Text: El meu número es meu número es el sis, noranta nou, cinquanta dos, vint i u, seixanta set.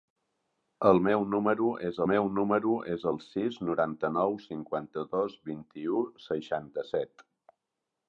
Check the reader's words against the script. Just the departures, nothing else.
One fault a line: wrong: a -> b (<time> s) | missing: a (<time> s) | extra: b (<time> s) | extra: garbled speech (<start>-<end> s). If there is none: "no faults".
no faults